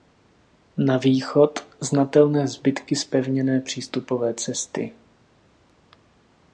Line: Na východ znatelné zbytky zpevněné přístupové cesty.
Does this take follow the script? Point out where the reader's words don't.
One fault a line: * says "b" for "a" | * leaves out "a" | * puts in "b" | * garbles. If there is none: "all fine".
all fine